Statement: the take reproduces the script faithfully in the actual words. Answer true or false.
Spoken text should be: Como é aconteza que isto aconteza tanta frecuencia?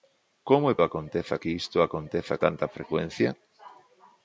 true